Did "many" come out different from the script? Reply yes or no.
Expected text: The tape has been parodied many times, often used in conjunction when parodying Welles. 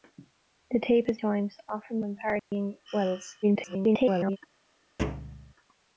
yes